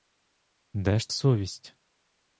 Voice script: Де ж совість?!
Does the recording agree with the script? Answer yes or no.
yes